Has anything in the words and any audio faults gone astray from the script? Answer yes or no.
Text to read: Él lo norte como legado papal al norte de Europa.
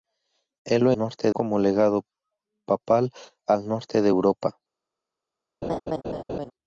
yes